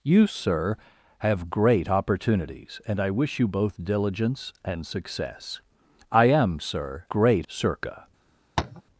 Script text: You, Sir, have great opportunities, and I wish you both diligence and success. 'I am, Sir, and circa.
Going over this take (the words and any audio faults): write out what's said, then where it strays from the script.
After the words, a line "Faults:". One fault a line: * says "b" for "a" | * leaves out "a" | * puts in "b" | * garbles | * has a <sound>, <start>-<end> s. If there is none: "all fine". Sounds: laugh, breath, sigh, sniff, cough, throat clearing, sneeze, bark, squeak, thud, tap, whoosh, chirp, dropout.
You, Sir, have great opportunities, and I wish you both diligence and success. 'I am, Sir, great circa.
Faults:
* says "great" for "and"
* has a tap, 8.6-8.8 s